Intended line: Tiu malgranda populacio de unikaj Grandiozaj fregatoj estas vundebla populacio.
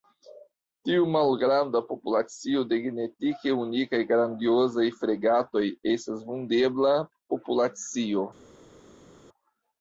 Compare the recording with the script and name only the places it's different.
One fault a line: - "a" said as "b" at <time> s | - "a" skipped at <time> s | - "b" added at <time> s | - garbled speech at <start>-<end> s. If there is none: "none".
- "genetike" added at 2.9 s